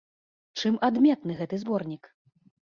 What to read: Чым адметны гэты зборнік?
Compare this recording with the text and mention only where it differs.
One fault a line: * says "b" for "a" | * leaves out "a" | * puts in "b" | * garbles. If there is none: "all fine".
all fine